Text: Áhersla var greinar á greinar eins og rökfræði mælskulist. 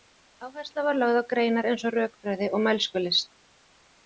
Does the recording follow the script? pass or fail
fail